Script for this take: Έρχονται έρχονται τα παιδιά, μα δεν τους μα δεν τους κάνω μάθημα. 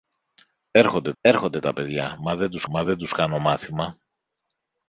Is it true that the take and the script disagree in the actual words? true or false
false